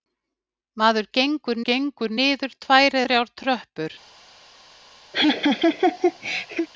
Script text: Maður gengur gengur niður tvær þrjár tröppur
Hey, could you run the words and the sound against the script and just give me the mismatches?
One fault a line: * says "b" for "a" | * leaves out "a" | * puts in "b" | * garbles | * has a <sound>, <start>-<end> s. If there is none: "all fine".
* has a laugh, 5.1-6.7 s